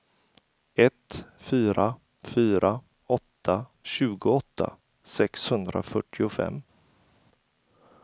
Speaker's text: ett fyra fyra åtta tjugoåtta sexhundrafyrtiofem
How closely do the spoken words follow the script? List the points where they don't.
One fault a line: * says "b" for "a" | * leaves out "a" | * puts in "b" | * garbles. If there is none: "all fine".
all fine